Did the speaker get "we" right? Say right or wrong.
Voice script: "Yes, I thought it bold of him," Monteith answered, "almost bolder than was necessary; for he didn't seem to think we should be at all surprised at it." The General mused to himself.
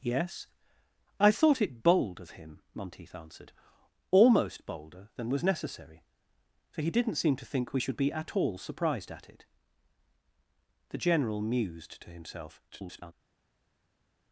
right